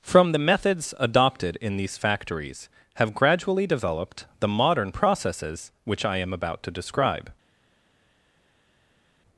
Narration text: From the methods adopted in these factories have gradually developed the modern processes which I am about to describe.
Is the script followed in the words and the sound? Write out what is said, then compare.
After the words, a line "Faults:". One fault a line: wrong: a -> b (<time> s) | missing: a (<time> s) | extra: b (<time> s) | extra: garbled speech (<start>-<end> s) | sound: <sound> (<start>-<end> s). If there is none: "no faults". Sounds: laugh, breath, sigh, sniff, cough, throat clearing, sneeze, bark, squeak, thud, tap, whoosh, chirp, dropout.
From the methods adopted in these factories have gradually developed the modern processes which I am about to describe.
Faults:
no faults